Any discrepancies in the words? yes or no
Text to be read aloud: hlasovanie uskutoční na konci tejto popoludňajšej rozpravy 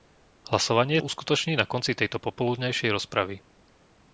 no